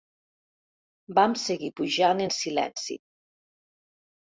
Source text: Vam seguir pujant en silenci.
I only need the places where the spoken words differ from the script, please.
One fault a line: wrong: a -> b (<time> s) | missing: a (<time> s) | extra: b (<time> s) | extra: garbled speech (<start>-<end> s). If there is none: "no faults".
no faults